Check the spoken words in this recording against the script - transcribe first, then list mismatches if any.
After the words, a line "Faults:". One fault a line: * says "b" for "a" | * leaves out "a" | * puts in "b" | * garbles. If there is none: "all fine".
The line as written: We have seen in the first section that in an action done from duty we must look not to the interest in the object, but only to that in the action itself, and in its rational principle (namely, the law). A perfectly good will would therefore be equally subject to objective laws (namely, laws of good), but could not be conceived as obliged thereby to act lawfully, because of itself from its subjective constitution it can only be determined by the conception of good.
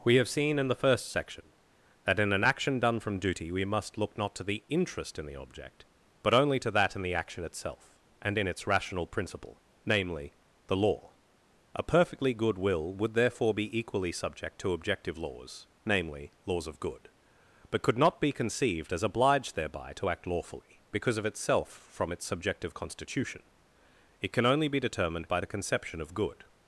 We have seen in the first section that in an action done from duty we must look not to the interest in the object, but only to that in the action itself, and in its rational principle (namely, the law). A perfectly good will would therefore be equally subject to objective laws (namely, laws of good), but could not be conceived as obliged thereby to act lawfully, because of itself from its subjective constitution it can only be determined by the conception of good.
Faults:
all fine